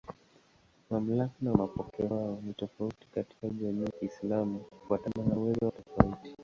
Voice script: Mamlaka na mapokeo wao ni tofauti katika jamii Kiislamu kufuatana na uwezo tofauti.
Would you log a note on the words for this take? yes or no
no